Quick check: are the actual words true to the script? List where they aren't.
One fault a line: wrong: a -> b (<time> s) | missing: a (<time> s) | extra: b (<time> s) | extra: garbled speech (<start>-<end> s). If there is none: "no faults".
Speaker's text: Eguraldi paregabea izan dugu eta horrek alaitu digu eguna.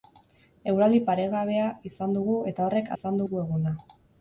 wrong: alaitu -> izan (3.0 s)